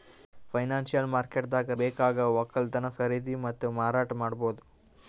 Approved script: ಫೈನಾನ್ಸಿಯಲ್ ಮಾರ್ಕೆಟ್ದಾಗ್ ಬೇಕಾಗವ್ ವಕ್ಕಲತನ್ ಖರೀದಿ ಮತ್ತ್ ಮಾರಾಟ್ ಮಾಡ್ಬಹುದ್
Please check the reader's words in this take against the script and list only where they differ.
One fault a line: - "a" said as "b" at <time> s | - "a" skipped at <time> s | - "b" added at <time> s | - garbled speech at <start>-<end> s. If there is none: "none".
none